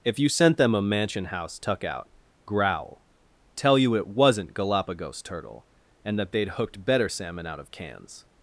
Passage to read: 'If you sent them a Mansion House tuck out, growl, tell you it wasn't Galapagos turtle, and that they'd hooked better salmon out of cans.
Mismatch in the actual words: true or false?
false